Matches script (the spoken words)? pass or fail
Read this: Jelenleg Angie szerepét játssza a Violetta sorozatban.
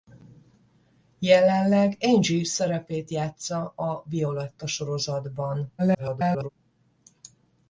fail